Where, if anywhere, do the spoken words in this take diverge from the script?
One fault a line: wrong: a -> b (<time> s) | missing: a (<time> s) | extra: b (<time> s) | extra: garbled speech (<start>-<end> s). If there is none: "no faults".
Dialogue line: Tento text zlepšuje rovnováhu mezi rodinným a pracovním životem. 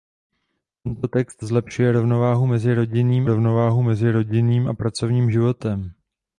extra: rovnováhu mezi rodinným (3.3 s)